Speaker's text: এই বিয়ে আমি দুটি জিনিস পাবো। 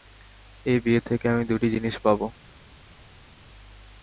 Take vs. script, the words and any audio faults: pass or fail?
fail